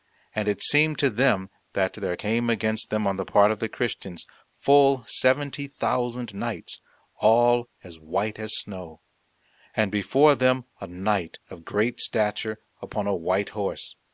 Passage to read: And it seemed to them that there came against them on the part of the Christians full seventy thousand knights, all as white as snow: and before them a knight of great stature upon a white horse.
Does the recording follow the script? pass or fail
pass